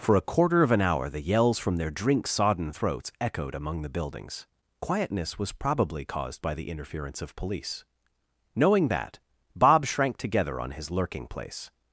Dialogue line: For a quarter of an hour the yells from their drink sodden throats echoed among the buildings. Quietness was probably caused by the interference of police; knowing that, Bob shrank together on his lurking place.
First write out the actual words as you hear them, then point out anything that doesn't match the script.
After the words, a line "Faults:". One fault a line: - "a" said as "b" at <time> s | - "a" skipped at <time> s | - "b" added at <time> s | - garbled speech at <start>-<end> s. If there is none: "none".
For a quarter of an hour the yells from their drink sodden throats echoed among the buildings. Quietness was probably caused by the interference of police; knowing that, Bob shrank together on his lurking place.
Faults:
none